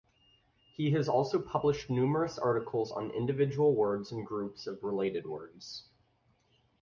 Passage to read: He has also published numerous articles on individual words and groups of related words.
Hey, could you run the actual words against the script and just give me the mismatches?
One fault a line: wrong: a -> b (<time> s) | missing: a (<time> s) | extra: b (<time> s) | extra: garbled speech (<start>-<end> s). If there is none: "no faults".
no faults